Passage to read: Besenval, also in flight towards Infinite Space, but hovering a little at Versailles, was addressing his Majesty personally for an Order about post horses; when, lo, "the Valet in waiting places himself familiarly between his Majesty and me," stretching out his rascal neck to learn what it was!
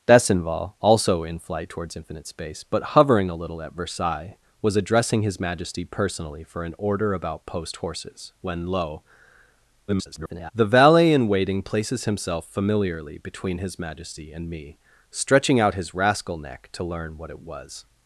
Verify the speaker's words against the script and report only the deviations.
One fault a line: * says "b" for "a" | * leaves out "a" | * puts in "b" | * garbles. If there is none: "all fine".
* garbles